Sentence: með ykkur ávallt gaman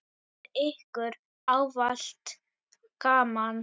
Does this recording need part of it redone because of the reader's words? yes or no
no